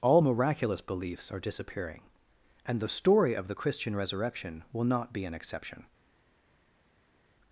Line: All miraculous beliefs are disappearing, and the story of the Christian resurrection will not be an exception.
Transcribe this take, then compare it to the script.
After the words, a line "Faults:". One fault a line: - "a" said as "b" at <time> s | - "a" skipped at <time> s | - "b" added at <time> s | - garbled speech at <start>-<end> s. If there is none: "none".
All miraculous beliefs are disappearing, and the story of the Christian resurrection will not be an exception.
Faults:
none